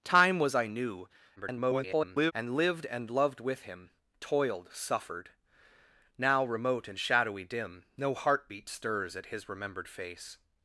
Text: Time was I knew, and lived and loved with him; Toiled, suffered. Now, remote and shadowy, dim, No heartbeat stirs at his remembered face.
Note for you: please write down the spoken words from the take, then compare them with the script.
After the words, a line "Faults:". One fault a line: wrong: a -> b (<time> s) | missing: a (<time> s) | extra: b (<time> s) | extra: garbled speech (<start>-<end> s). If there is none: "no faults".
Time was I knew, [garbled] and lived and loved with him; Toiled, suffered. Now, remote and shadowy, dim, No heartbeat stirs at his remembered face.
Faults:
extra: garbled speech (1.4-2.3 s)